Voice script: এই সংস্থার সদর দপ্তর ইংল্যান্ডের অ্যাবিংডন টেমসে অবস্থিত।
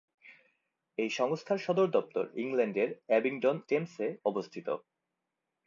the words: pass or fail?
pass